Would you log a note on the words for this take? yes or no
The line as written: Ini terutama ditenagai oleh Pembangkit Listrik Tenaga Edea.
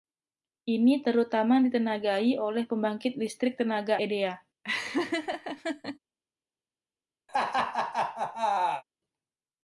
no